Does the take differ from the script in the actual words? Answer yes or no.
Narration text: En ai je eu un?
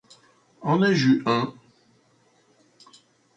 no